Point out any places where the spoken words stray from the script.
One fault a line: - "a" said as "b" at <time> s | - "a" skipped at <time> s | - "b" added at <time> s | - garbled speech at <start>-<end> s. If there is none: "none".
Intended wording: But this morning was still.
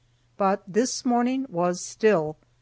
none